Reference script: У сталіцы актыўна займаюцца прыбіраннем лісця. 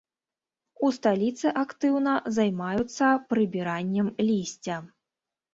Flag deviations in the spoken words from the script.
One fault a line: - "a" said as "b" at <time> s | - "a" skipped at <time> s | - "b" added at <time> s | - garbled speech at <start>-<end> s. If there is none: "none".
none